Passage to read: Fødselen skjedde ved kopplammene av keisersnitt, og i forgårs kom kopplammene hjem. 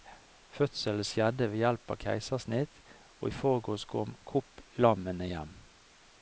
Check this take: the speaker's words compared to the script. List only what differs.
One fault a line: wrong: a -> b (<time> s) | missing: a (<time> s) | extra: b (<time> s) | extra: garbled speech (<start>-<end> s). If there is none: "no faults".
wrong: kopplammene -> hjelp (1.6 s)